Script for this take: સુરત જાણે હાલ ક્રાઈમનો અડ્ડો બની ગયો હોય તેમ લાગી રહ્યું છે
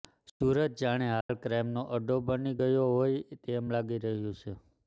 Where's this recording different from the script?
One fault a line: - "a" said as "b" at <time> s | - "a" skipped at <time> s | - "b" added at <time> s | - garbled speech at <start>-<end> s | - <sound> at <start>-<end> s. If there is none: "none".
- dropout at 1.2-1.3 s